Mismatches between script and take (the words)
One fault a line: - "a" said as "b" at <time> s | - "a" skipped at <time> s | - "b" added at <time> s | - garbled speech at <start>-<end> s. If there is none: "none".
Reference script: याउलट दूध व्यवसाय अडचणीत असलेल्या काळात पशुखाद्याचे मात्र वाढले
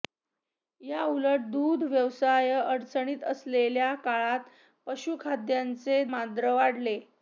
none